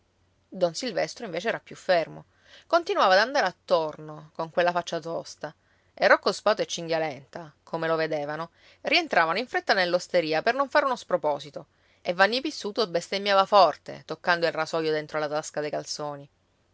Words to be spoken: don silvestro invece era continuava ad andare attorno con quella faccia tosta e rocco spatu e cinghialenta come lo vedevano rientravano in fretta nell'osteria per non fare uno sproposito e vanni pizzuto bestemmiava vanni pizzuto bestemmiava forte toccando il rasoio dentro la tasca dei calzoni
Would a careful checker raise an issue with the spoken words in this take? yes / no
yes